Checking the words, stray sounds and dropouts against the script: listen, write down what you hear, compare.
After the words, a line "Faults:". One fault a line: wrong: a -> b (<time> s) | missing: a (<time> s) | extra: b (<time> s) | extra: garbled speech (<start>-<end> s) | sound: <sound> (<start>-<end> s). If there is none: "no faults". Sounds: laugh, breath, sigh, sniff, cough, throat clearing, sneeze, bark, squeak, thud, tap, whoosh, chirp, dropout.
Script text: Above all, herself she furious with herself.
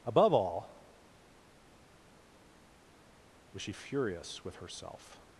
Above all, was she furious with herself.
Faults:
wrong: herself -> was (3.5 s)